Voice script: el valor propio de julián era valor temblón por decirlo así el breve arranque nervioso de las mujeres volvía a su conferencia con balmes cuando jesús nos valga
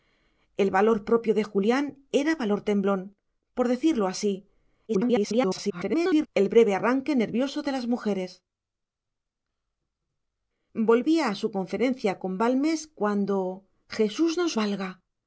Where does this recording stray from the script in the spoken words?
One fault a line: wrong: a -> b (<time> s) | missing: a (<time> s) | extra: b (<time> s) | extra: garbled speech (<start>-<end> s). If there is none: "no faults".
extra: garbled speech (4.9-6.3 s)